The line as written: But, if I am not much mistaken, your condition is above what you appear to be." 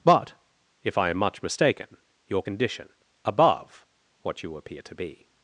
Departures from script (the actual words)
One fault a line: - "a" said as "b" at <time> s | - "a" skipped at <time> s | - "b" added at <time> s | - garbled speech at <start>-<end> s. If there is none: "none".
- "not" skipped at 1.2 s
- "is" skipped at 2.9 s